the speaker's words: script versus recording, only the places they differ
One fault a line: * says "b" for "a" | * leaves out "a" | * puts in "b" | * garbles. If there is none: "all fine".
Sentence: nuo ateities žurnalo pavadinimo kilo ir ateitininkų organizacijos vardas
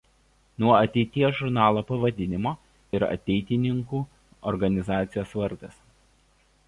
* leaves out "kilo"